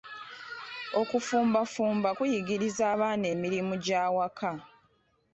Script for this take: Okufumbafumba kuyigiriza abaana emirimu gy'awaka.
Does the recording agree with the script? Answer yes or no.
yes